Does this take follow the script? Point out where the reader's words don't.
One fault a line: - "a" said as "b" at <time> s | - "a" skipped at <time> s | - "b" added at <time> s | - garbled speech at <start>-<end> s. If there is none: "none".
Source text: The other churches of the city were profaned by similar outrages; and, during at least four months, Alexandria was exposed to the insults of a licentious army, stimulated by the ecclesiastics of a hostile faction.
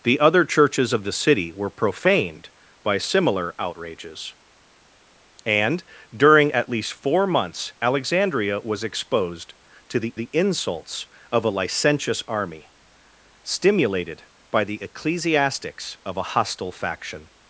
- "the" added at 10.1 s